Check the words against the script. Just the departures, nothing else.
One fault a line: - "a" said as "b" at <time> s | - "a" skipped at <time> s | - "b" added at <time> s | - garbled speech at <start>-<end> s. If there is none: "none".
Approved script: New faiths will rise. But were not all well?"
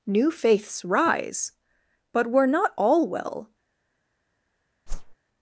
- "will" skipped at 0.8 s